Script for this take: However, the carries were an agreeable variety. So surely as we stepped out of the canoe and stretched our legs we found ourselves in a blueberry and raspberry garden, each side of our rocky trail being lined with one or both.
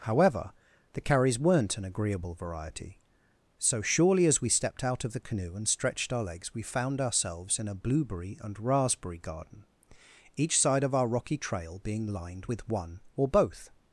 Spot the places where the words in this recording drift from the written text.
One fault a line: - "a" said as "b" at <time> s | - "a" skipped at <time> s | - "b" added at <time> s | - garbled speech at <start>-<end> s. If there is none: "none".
- "were" said as "weren't" at 1.4 s